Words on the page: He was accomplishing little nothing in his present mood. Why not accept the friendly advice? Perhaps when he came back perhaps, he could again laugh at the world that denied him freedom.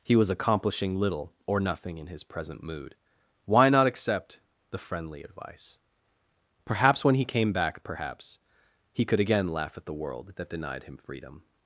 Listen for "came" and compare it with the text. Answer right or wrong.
right